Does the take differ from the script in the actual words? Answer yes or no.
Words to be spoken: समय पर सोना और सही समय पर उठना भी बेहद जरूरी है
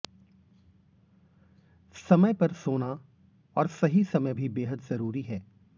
yes